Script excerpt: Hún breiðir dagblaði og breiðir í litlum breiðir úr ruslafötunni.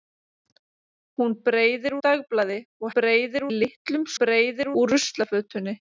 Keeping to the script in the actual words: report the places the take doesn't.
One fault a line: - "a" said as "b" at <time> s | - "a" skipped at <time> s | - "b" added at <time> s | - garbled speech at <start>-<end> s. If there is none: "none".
none